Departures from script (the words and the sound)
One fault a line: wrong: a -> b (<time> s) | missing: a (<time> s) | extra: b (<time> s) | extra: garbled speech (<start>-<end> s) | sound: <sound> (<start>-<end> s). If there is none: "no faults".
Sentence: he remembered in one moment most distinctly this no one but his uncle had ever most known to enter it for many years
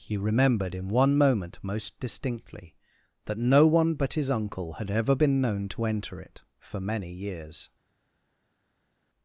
wrong: this -> that (3.2 s)
wrong: most -> been (5.2 s)